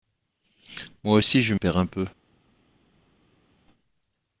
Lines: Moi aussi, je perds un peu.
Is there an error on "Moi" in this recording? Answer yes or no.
no